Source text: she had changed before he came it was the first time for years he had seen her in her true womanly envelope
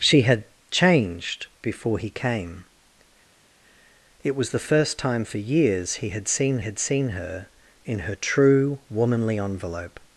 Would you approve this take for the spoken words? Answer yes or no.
no